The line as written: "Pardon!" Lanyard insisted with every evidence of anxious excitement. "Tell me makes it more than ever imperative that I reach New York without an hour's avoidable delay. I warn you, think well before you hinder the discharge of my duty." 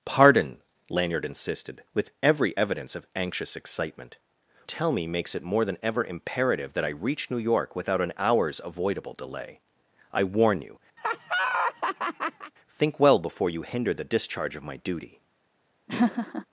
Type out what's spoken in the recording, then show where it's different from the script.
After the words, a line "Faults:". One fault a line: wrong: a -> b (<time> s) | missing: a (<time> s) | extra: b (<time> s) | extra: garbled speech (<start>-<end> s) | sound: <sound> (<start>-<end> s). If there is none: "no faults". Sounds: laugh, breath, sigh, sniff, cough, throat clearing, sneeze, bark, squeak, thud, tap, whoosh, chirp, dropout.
"Pardon!" Lanyard insisted with every evidence of anxious excitement. "Tell me makes it more than ever imperative that I reach New York without an hour's avoidable delay. I warn you, think well before you hinder the discharge of my duty."
Faults:
sound: laugh (11.0-12.5 s)
sound: laugh (15.9-16.4 s)